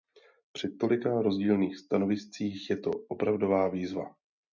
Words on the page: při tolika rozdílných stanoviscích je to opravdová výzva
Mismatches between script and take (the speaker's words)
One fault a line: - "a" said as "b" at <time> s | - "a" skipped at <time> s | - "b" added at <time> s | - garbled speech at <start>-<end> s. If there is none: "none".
none